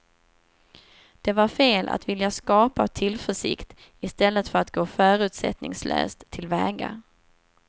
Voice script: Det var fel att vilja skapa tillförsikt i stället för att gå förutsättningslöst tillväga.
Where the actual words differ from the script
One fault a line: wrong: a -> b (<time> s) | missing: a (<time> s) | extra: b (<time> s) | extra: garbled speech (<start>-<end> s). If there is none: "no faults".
no faults